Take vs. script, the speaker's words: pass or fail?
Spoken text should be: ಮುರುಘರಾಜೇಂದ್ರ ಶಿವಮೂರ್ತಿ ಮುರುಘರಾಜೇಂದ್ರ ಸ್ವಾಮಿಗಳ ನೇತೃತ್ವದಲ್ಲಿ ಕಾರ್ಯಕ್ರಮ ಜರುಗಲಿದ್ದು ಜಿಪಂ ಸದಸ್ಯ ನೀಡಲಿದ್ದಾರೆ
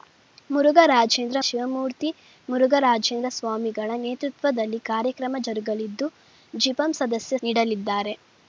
pass